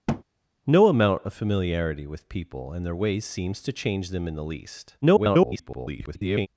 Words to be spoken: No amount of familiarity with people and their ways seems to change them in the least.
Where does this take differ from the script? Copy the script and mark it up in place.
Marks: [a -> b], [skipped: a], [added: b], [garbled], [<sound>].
[thud] No amount of familiarity with people and their ways seems to change them in the least. [garbled]